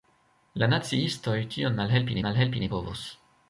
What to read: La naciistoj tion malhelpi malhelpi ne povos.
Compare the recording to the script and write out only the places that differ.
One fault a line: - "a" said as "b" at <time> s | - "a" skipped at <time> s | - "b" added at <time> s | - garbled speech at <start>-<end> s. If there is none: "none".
none